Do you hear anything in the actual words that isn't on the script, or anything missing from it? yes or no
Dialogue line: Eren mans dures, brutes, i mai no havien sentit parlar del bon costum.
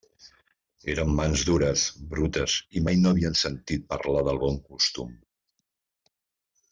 no